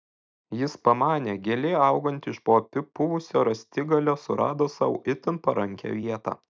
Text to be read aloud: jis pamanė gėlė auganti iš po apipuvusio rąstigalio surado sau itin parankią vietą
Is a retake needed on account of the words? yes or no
no